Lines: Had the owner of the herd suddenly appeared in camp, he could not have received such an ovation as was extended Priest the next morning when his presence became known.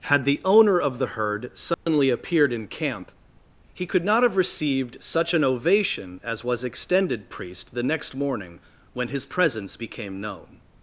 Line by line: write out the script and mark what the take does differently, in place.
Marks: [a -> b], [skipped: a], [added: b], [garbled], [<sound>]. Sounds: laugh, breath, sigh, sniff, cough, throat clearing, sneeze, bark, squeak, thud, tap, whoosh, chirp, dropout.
Had the owner of the herd suddenly [dropout] appeared in camp, he could not have received such an ovation as was extended Priest the next morning when his presence became known.